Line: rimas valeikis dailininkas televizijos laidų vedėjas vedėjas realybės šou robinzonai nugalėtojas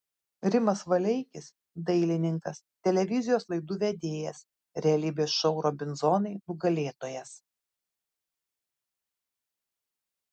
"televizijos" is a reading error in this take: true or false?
false